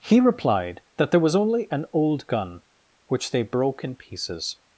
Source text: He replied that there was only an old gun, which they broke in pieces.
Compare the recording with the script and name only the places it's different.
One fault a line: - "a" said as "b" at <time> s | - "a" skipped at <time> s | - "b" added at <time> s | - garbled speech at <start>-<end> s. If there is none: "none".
none